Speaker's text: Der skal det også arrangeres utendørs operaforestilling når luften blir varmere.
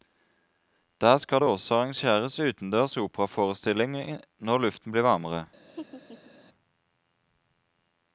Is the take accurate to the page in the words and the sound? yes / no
no